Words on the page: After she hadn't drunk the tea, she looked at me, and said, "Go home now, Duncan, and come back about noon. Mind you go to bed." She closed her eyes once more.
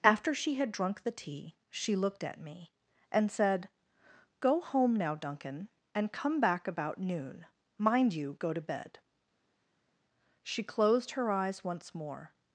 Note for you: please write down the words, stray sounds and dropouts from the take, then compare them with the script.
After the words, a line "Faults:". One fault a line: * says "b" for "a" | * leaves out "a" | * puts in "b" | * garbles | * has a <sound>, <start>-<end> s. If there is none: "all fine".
After she had drunk the tea, she looked at me, and said, "Go home now, Duncan, and come back about noon. Mind you go to bed." She closed her eyes once more.
Faults:
* says "had" for "hadn't"